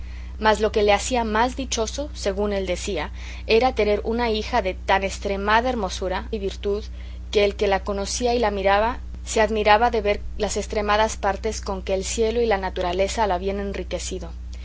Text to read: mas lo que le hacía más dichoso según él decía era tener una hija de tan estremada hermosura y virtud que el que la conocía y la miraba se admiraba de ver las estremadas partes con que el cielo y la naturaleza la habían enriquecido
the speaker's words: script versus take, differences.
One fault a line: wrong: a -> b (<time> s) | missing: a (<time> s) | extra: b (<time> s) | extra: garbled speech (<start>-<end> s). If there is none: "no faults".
no faults